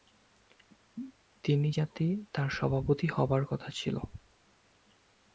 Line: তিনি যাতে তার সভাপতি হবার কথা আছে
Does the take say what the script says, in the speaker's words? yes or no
no